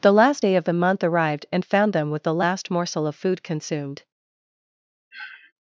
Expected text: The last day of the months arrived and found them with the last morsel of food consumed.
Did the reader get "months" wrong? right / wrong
wrong